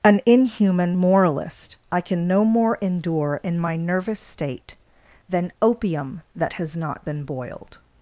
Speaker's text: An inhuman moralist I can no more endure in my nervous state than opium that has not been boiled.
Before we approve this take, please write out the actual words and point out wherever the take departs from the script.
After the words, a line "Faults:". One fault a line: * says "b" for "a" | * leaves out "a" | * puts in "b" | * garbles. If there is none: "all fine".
An inhuman moralist I can no more endure in my nervous state than opium that has not been boiled.
Faults:
all fine